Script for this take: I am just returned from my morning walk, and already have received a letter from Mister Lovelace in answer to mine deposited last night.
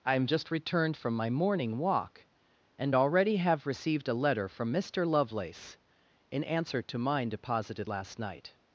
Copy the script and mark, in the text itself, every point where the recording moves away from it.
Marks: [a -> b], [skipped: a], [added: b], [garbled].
I am just returned from my morning walk, and already have received a letter from Mister Lovelace in answer to mine deposited last night.